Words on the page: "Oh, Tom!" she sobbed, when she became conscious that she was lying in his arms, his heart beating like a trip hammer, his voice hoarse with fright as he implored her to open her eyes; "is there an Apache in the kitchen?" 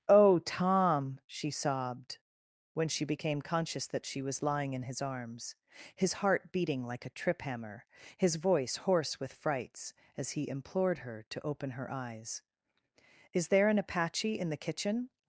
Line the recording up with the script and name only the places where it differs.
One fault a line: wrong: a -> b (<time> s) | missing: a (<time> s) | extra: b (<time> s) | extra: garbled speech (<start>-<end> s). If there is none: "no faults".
wrong: fright -> frights (9.3 s)